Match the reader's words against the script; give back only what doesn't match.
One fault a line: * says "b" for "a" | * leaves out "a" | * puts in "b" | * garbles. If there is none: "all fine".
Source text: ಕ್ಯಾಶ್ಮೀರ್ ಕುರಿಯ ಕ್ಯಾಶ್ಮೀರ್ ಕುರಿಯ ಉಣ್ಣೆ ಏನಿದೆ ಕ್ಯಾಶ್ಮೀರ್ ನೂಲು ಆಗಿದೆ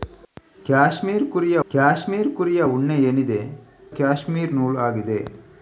all fine